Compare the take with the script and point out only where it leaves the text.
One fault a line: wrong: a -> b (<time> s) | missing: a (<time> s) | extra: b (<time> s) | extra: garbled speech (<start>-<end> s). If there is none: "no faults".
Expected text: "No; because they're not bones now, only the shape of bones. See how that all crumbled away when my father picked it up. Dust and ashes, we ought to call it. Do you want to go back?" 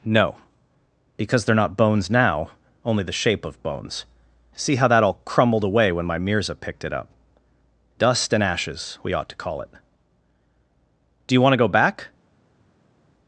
wrong: father -> mirza (6.2 s)